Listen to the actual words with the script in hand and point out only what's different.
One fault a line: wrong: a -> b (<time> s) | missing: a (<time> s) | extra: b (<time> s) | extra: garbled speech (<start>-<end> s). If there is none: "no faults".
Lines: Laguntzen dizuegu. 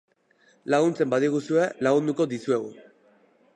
extra: badiguzue lagunduko (1.1 s)